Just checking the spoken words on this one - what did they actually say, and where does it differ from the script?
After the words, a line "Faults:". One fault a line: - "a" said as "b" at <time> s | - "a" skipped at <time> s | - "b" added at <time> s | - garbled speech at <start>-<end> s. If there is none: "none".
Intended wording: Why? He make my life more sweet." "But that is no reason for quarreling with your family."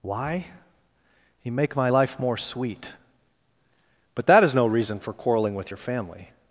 Why? He make my life more sweet." "But that is no reason for quarreling with your family."
Faults:
none